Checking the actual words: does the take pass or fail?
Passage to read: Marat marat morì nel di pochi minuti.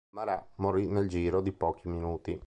fail